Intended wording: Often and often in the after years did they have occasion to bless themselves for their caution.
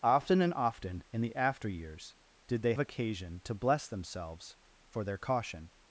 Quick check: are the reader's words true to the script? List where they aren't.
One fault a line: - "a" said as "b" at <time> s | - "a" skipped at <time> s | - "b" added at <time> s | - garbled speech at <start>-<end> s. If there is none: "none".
- "have" skipped at 2.7 s